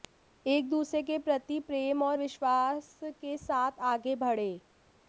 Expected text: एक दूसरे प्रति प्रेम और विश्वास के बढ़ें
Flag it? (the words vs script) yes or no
yes